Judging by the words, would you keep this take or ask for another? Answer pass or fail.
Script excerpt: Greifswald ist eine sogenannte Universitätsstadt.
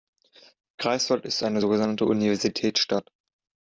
pass